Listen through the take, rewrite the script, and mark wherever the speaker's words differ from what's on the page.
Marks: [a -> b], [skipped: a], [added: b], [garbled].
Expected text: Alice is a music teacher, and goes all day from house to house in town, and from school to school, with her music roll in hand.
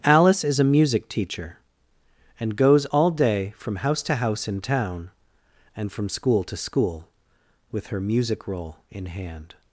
Alice is a music teacher, and goes all day from house to house in town, and from school to school, with her music roll in hand.